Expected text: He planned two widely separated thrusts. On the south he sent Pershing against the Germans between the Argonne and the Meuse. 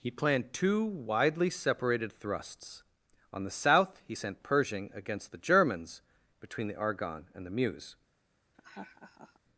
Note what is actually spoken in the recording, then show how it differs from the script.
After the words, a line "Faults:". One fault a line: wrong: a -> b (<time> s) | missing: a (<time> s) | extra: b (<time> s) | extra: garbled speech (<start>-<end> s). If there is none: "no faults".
He planned two widely separated thrusts. On the south he sent Pershing against the Germans between the Argonne and the Meuse.
Faults:
no faults